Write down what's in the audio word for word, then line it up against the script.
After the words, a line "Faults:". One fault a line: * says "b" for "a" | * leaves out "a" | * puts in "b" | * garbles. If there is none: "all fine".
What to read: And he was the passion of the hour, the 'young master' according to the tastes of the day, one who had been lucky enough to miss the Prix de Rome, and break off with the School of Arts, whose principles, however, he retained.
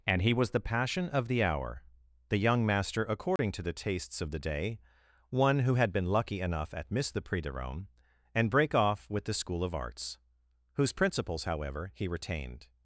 And he was the passion of the hour, the 'young master' according to the tastes of the day, one who had been lucky enough at miss the Prix de Rome, and break off with the School of Arts, whose principles, however, he retained.
Faults:
* says "at" for "to"